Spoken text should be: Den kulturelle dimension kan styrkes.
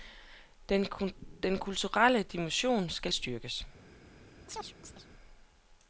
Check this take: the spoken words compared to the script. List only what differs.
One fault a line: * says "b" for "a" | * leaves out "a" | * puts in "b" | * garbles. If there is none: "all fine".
* says "skal" for "kan"